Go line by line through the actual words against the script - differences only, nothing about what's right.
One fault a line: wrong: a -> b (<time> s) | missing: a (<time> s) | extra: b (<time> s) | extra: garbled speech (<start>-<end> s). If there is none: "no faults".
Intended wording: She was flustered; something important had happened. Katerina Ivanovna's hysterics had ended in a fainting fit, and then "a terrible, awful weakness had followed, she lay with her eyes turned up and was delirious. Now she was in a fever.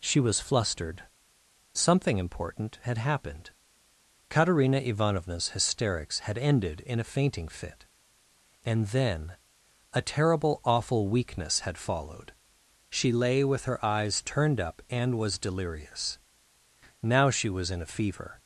no faults